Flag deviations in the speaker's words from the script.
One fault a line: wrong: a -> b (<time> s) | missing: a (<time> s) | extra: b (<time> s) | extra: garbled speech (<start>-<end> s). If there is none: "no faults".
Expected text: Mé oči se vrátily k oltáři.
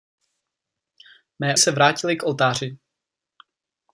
missing: oči (1.6 s)